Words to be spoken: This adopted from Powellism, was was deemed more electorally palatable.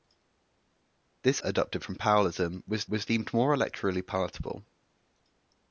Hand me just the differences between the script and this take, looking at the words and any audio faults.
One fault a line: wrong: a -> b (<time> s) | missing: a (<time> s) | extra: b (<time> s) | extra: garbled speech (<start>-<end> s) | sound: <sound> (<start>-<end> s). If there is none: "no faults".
no faults